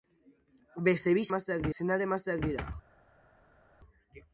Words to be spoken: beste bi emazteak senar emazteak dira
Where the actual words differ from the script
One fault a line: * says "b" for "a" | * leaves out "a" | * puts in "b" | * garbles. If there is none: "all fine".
all fine